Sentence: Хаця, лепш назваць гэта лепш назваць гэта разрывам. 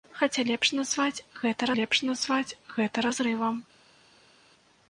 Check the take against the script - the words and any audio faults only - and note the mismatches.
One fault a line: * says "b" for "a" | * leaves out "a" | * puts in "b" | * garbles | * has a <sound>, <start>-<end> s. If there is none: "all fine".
all fine